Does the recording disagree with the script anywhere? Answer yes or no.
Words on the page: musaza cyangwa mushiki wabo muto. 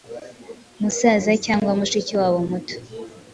no